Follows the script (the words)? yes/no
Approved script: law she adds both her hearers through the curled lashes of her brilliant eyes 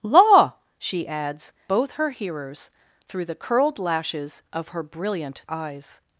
yes